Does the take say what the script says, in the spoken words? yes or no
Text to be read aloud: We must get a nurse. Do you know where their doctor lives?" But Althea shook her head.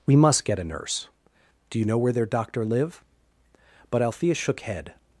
no